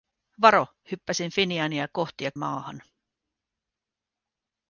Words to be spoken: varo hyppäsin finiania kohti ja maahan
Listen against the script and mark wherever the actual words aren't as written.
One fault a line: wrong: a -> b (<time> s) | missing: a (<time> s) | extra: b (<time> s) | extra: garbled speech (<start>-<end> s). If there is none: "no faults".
no faults